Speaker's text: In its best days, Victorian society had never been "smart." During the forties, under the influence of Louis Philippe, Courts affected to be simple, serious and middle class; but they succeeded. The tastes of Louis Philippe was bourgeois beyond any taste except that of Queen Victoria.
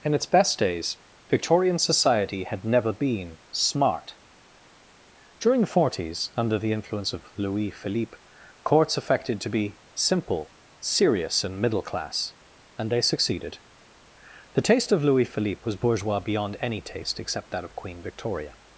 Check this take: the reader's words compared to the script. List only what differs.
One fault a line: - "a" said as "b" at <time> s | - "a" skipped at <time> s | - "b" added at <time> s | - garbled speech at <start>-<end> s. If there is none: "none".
- "but" said as "and" at 12.8 s
- "tastes" said as "taste" at 14.6 s